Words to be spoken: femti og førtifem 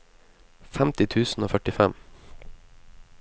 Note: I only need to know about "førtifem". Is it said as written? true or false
true